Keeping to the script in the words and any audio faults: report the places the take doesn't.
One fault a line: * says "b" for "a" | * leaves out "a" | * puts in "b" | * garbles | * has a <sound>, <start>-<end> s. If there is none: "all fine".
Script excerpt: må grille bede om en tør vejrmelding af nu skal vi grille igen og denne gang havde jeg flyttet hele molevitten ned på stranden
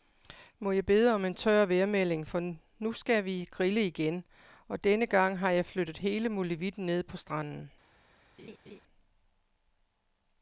* says "jeg" for "grille"
* says "for" for "af"
* says "har" for "havde"
* has a laugh, 8.4-8.8 s